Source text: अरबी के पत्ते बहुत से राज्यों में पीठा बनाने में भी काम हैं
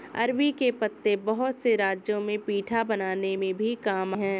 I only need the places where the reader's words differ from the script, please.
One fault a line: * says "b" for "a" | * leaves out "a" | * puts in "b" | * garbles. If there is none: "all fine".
all fine